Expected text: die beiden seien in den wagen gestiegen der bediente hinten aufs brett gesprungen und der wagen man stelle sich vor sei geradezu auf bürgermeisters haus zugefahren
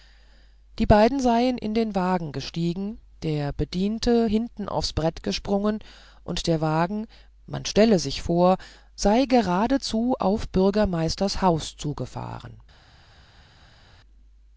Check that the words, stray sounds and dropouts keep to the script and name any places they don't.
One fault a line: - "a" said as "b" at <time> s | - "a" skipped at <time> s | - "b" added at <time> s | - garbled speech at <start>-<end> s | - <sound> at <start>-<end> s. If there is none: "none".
none